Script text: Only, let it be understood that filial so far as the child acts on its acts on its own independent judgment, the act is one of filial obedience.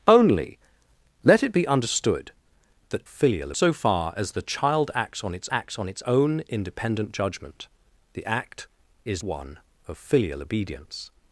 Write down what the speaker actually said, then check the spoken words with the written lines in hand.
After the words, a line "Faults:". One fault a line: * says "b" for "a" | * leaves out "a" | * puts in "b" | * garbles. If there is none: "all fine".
Only, let it be understood that filial so far as the child acts on its acts on its own independent judgment, the act is one of filial obedience.
Faults:
all fine